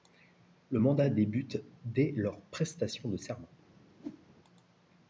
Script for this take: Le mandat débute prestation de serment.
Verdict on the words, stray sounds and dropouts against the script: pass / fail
fail